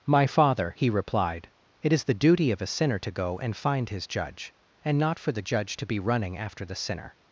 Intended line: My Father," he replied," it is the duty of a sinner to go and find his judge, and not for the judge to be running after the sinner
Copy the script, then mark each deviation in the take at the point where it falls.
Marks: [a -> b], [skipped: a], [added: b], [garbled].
My Father," he replied," it is the duty of a sinner to go and find his judge, and not for the judge to be running after the sinner